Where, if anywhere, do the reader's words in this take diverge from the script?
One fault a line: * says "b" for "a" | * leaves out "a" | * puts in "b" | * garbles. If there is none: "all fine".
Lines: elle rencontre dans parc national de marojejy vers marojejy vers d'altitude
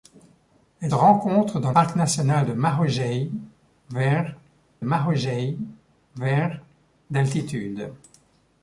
all fine